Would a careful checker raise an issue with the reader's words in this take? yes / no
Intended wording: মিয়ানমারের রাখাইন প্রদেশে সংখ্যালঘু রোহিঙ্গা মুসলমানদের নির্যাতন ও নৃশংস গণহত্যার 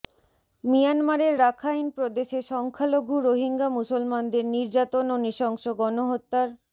no